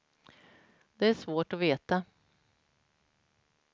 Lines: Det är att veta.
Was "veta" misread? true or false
false